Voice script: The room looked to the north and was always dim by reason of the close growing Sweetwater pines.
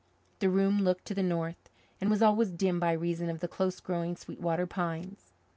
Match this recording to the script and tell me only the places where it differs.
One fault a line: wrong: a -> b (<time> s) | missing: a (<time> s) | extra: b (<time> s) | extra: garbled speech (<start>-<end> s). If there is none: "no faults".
no faults